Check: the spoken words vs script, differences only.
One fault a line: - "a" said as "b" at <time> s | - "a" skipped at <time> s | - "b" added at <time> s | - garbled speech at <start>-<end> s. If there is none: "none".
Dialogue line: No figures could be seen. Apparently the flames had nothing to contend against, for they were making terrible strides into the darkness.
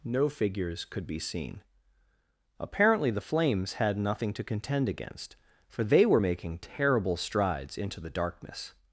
none